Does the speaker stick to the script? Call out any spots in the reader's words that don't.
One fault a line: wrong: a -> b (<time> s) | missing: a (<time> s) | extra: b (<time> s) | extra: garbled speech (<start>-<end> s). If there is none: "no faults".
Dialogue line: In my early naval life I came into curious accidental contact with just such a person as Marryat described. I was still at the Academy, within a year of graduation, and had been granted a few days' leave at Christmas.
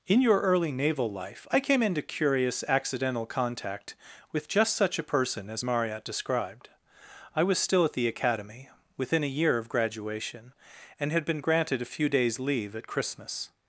wrong: my -> your (0.2 s)